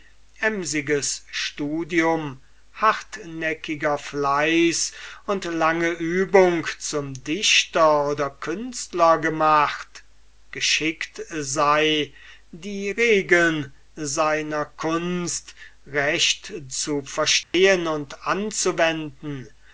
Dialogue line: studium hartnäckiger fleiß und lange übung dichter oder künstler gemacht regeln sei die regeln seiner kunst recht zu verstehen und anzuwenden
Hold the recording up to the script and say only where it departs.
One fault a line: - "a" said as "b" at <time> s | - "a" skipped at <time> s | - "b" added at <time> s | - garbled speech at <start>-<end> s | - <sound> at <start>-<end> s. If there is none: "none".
- "zum" added at 6.8 s
- "regeln" said as "geschickt" at 10.5 s
- dropout at 17.4-17.5 s